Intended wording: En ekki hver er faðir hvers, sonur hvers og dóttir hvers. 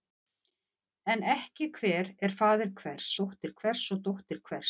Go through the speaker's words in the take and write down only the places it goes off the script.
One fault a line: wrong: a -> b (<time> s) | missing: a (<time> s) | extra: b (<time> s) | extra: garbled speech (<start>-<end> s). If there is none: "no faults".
wrong: sonur -> dóttir (3.2 s)